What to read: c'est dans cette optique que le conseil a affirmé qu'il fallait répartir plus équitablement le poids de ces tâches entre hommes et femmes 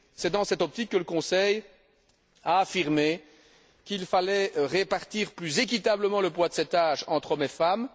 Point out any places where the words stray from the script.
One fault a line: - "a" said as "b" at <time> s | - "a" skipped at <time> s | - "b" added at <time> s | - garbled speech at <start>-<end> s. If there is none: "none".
none